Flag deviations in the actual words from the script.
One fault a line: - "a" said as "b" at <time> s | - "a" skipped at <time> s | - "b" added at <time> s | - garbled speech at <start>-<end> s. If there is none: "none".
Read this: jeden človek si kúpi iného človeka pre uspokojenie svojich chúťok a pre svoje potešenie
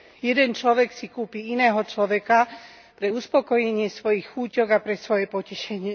none